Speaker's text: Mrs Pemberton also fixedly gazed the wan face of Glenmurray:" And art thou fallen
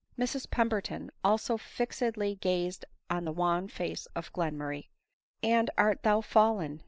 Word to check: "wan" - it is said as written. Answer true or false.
true